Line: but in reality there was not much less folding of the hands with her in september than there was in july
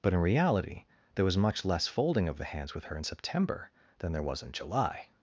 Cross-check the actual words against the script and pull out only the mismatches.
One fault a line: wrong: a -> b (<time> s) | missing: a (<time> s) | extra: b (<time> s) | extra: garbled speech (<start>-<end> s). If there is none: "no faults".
missing: not (1.4 s)